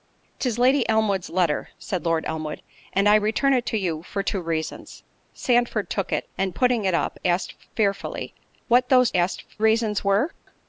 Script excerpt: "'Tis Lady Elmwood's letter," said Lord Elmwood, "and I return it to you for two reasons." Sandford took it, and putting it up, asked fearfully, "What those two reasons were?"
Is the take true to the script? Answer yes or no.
no